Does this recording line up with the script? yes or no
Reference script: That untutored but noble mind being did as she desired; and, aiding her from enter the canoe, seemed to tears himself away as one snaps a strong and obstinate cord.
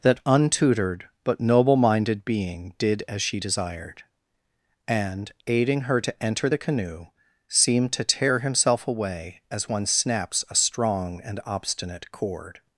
no